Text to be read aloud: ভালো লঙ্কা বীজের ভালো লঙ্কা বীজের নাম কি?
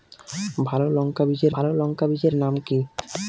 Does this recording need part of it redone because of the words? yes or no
no